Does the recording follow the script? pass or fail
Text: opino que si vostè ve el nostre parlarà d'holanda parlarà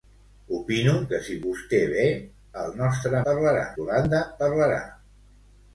pass